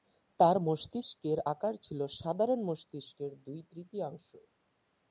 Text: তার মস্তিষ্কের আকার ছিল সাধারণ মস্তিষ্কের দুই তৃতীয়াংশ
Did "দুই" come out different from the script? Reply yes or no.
no